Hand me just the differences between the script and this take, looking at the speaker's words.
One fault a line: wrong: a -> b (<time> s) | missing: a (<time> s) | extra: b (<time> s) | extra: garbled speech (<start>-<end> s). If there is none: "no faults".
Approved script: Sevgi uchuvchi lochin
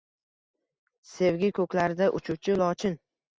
extra: ko'klarida (1.6 s)